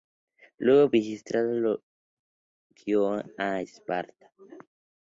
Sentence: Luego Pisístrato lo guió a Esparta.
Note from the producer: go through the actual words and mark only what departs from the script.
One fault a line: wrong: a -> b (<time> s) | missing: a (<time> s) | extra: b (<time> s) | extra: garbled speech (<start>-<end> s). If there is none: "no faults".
no faults